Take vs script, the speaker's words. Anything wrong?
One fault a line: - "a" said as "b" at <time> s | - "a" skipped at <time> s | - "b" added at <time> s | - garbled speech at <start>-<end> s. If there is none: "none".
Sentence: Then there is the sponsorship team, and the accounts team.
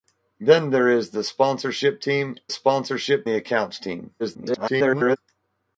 - "and" said as "sponsorship" at 2.5 s
- garbled speech at 4.2-5.2 s